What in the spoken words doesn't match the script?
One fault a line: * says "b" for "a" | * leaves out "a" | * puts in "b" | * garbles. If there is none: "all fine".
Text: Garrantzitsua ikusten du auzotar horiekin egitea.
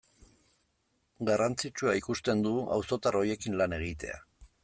* puts in "lan"